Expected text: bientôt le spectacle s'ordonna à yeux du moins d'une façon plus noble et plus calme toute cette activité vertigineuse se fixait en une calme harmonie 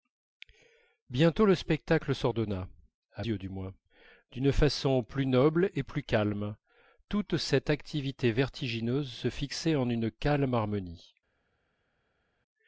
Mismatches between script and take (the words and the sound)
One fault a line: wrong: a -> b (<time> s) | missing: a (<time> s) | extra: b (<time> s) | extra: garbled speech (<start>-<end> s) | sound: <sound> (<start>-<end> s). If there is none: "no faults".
no faults